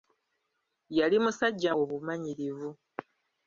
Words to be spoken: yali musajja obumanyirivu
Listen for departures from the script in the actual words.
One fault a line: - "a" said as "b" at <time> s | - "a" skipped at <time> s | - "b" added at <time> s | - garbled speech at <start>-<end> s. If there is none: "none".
none